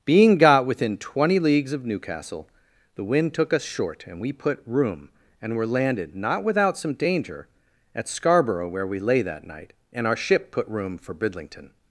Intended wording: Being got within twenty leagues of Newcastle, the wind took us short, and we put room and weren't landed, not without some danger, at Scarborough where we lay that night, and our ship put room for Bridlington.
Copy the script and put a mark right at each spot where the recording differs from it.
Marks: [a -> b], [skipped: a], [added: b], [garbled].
Being got within twenty leagues of Newcastle, the wind took us short, and we put room and [weren't -> were] landed, not without some danger, at Scarborough where we lay that night, and our ship put room for Bridlington.